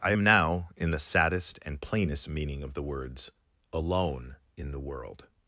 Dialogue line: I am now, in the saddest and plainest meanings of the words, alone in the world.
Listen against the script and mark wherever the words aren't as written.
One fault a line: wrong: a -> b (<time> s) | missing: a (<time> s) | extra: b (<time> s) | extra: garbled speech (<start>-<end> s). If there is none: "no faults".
wrong: meanings -> meaning (2.3 s)